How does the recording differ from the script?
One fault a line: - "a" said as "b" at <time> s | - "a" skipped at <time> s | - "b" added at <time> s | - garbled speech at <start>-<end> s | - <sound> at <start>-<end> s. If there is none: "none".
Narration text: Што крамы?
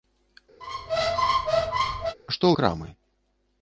- squeak at 0.6-2.2 s